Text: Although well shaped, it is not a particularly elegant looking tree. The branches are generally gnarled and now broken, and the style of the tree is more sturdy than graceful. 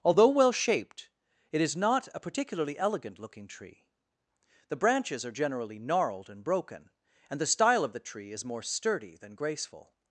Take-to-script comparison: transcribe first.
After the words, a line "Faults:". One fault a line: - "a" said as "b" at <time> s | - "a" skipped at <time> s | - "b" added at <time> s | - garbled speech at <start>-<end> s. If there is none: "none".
Although well shaped, it is not a particularly elegant looking tree. The branches are generally gnarled and broken, and the style of the tree is more sturdy than graceful.
Faults:
- "now" skipped at 6.4 s